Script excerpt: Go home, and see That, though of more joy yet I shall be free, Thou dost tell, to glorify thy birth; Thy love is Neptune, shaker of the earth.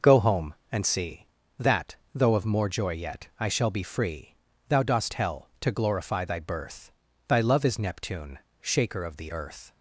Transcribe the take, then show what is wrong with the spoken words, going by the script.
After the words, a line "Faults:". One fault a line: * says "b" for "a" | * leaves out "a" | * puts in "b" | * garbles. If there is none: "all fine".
Go home, and see That, though of more joy yet I shall be free, Thou dost tell, to glorify thy birth; Thy love is Neptune, shaker of the earth.
Faults:
all fine